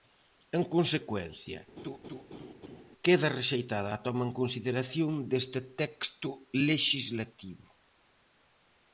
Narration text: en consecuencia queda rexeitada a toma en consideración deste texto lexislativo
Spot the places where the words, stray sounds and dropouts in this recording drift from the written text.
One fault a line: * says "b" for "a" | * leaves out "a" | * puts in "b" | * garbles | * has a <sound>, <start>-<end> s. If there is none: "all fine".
* has a laugh, 1.8-2.8 s